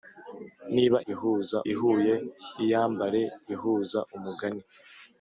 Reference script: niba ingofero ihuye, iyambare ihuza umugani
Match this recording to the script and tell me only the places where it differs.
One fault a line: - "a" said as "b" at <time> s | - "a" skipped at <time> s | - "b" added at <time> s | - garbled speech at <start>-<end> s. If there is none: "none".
- "ingofero" said as "ihuza" at 1.1 s